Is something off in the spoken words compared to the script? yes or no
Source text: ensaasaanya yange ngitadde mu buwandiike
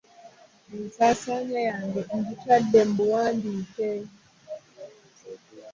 no